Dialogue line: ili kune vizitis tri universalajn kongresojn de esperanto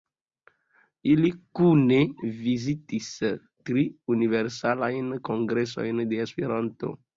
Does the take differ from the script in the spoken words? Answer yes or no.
no